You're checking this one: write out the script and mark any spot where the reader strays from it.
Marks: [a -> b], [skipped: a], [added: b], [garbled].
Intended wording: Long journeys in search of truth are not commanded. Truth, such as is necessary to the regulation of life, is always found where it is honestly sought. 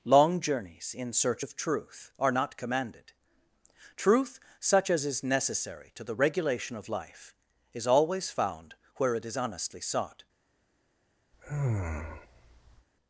Long journeys in search of truth are not commanded. Truth, such as is necessary to the regulation of life, is always found where it is honestly sought.